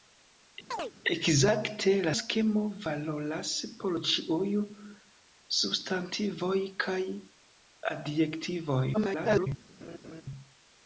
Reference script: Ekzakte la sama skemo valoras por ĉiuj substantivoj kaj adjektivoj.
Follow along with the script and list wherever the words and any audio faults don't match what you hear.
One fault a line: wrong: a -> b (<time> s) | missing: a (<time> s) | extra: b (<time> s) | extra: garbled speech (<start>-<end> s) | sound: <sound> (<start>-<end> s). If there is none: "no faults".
sound: chirp (0.7-0.9 s)
missing: sama (2.1 s)
extra: garbled speech (8.9-9.5 s)
sound: laugh (9.8-10.2 s)